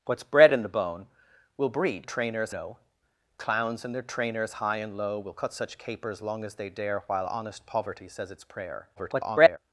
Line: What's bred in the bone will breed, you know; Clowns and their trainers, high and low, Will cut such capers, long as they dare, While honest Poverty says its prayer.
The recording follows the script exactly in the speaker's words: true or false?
false